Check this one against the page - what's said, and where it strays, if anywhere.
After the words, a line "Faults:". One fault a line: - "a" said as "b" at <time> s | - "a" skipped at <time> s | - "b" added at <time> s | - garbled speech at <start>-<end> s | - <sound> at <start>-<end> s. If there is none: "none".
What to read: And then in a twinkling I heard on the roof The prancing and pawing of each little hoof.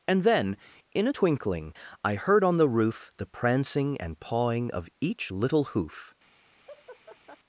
And then in a twinkling I heard on the roof The prancing and pawing of each little hoof.
Faults:
- laugh at 6.7-7.4 s